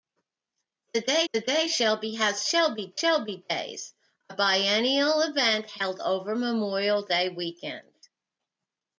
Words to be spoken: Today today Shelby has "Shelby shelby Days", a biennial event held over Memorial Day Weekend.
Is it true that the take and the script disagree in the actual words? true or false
false